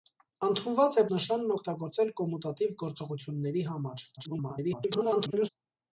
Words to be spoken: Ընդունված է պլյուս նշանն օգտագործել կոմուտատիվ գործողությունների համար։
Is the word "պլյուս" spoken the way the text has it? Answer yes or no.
no